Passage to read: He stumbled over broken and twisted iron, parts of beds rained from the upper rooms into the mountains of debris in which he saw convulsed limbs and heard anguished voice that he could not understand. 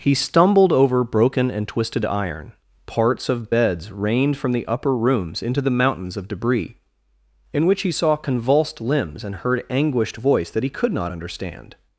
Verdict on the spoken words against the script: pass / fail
pass